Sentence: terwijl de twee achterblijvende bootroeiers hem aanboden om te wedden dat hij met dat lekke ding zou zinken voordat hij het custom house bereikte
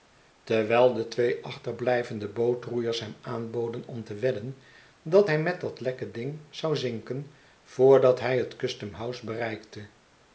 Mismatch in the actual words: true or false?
false